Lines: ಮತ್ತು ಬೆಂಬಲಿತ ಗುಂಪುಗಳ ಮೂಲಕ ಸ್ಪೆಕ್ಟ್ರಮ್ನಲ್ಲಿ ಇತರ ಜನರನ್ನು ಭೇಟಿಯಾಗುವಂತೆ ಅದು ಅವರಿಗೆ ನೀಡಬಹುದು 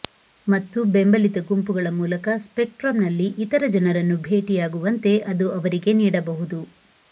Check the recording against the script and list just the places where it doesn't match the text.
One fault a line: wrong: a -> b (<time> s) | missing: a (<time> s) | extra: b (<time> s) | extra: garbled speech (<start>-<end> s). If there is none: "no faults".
no faults